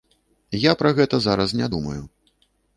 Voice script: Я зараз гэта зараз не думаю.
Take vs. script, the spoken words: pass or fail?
fail